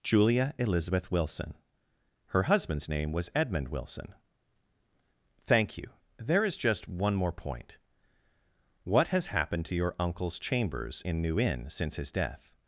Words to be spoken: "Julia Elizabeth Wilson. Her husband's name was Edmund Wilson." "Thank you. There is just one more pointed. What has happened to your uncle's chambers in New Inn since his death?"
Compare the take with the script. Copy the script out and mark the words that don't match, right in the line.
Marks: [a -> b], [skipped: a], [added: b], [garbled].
"Julia Elizabeth Wilson. Her husband's name was Edmund Wilson." "Thank you. There is just one more [pointed. -> point] What has happened to your uncle's chambers in New Inn since his death?"